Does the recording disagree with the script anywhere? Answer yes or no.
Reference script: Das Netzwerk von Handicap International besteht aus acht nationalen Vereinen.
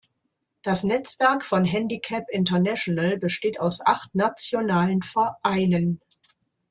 no